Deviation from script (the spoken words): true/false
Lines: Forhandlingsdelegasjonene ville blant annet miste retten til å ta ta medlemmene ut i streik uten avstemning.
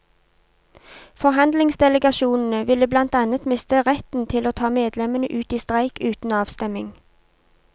true